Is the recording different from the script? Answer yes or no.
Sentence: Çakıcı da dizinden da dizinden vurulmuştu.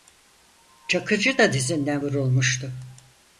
yes